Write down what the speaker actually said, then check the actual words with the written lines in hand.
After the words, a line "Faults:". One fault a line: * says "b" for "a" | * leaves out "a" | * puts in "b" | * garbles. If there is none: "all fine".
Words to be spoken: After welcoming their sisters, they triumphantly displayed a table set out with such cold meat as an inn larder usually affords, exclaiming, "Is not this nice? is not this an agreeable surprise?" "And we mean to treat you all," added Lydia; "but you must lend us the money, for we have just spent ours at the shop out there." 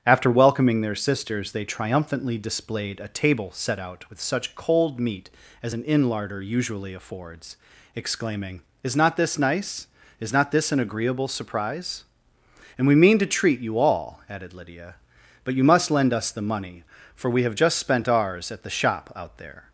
After welcoming their sisters, they triumphantly displayed a table set out with such cold meat as an inn larder usually affords, exclaiming, "Is not this nice? is not this an agreeable surprise?" "And we mean to treat you all," added Lydia; "but you must lend us the money, for we have just spent ours at the shop out there."
Faults:
all fine